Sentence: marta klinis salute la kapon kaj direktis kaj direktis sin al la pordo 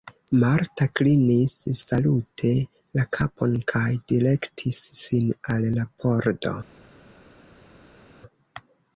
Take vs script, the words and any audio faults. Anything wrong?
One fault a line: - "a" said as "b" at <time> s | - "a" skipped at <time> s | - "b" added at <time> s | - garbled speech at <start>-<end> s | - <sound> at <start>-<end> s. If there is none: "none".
- "kaj direktis" skipped at 4.8 s